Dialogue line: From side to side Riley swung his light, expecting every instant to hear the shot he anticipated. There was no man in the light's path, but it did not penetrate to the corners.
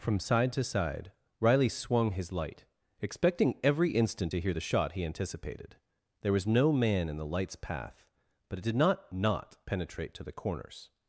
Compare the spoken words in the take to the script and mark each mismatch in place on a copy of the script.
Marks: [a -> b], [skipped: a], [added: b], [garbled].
From side to side Riley swung his light, expecting every instant to hear the shot he anticipated. There was no man in the light's path, but it did not [added: not] penetrate to the corners.